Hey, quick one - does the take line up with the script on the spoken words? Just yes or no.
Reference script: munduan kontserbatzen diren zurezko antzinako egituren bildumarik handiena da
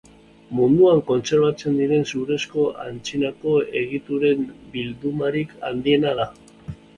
yes